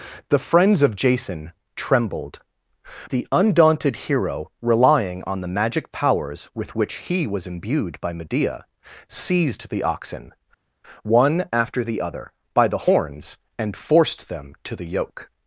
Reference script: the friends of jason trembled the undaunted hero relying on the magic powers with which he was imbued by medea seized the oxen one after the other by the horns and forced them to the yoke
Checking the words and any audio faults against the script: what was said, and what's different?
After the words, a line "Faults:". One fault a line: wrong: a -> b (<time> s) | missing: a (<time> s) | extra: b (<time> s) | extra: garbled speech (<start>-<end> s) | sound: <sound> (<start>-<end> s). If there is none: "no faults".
the friends of jason trembled the undaunted hero relying on the magic powers with which he was imbued by medea seized the oxen one after the other by the horns and forced them to the yoke
Faults:
no faults